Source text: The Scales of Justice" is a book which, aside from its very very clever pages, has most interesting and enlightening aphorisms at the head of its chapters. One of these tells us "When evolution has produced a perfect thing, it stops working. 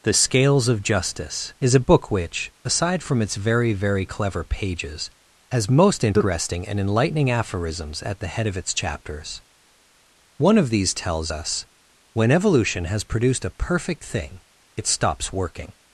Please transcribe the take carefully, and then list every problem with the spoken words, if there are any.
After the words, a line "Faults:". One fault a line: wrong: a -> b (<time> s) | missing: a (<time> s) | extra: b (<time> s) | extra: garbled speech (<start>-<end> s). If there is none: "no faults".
The Scales of Justice" is a book which, aside from its very very clever pages, has most interesting and enlightening aphorisms at the head of its chapters. One of these tells us "When evolution has produced a perfect thing, it stops working.
Faults:
no faults